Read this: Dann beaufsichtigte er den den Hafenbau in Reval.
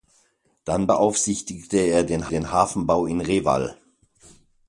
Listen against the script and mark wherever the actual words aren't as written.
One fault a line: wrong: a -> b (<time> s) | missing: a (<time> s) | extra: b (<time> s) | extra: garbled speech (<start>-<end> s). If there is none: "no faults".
no faults